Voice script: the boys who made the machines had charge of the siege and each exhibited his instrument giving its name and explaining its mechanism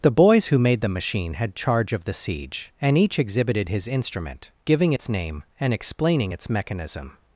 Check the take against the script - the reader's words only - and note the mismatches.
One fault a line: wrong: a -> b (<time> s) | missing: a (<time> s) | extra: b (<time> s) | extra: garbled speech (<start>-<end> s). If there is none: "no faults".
wrong: machines -> machine (0.9 s)